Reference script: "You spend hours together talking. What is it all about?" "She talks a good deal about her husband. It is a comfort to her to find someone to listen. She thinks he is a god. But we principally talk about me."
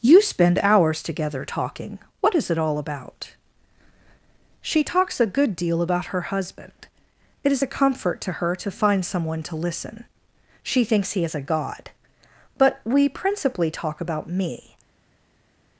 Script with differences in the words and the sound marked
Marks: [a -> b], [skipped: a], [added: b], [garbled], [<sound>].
"You spend hours together talking. What is it all about?" "She talks a good deal about her husband. It is a comfort to her to find someone to listen. She thinks he is a god. But we principally talk about me."